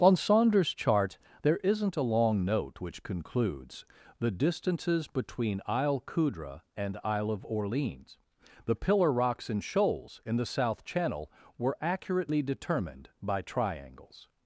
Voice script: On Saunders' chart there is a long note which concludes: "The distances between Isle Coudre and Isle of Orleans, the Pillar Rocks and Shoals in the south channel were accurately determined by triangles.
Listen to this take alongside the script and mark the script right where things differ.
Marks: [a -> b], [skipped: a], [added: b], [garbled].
On Saunders' chart there [is -> isn't] a long note which concludes: "The distances between Isle Coudre and Isle of Orleans, the Pillar Rocks and Shoals in the south channel were accurately determined by triangles.